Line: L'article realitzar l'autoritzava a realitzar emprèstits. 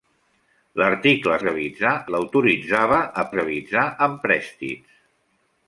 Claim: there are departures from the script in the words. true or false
false